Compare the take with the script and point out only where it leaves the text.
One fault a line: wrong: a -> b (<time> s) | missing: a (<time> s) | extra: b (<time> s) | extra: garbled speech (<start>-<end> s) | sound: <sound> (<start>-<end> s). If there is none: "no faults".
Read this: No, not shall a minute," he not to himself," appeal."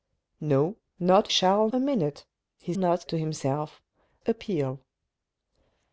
no faults